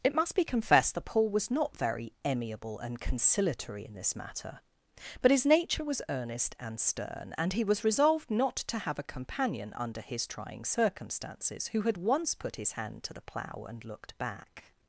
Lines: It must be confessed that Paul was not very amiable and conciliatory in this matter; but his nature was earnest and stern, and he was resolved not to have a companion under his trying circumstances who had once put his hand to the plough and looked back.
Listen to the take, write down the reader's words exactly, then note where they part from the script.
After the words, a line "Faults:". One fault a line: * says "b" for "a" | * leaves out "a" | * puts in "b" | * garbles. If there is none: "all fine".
It must be confessed that Paul was not very amiable and conciliatory in this matter; but his nature was earnest and stern, and he was resolved not to have a companion under his trying circumstances who had once put his hand to the plough and looked back.
Faults:
all fine